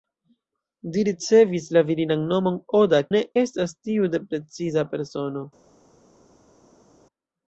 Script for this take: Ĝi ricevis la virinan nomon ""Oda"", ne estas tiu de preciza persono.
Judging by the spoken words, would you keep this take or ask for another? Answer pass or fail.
pass